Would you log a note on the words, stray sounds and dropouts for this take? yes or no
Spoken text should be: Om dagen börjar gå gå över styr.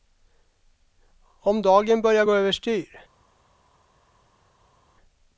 yes